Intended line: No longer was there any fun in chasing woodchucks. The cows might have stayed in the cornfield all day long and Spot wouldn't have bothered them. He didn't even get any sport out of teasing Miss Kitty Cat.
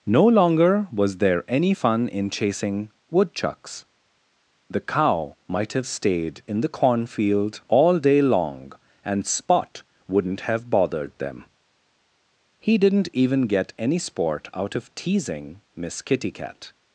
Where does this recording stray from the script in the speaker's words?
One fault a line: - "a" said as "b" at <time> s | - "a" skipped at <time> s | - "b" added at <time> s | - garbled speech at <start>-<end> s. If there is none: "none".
- "cows" said as "cow" at 4.8 s